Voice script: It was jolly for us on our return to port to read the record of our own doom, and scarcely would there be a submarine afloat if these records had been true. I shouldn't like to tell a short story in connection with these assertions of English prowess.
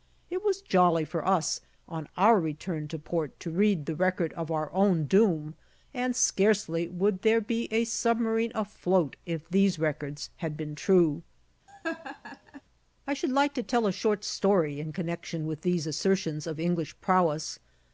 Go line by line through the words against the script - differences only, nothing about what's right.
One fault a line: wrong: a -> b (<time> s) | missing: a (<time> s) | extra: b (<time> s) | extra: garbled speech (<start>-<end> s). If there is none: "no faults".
wrong: shouldn't -> should (13.1 s)